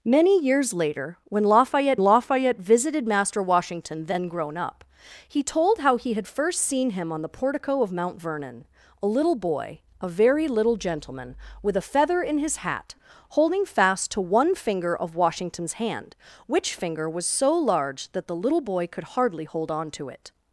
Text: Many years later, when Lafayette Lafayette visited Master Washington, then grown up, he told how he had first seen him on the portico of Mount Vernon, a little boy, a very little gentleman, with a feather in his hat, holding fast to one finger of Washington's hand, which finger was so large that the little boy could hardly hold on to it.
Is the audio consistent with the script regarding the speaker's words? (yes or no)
yes